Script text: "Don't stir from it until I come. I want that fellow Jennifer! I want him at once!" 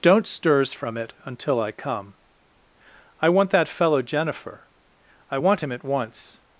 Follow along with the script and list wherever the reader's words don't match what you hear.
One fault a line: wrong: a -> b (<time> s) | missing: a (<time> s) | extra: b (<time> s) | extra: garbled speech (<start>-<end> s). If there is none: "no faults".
wrong: stir -> stirs (0.2 s)